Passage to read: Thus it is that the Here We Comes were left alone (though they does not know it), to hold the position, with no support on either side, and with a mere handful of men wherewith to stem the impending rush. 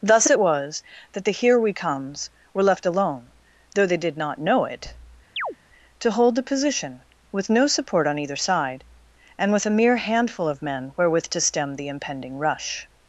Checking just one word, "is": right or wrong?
wrong